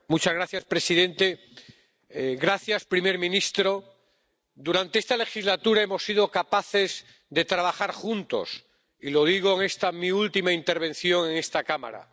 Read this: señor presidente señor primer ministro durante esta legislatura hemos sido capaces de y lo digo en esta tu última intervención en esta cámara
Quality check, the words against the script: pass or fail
fail